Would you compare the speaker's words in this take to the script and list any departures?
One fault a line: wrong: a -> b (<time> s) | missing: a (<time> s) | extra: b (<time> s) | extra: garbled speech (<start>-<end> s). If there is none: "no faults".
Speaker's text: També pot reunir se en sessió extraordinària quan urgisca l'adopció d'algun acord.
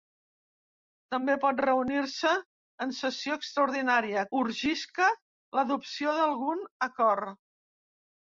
missing: quan (4.2 s)